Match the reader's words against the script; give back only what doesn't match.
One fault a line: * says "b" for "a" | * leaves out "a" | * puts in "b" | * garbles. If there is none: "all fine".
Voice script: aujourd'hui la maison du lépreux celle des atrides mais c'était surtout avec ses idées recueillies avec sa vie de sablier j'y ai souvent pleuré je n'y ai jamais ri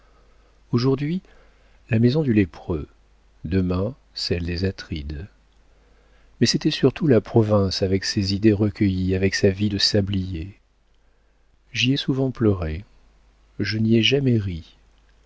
* puts in "demain"
* puts in "la province"